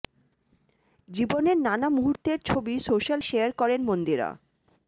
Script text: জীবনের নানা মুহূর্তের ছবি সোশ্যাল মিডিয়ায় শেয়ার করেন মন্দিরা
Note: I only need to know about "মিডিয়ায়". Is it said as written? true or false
false